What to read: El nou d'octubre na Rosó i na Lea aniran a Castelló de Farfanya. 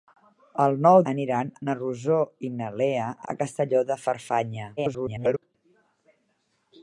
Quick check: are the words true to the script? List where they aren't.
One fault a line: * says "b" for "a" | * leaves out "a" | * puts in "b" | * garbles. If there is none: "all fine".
* says "aniran" for "d'octubre"
* leaves out "aniran"
* garbles